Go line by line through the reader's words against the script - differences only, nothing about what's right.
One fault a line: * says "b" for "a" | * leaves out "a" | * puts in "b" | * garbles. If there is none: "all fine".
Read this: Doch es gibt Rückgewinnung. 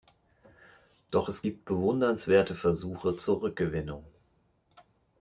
* puts in "bewundernswerte Versuche zur"